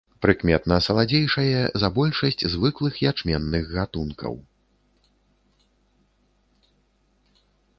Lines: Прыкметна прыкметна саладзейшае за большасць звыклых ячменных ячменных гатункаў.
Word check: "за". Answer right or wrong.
right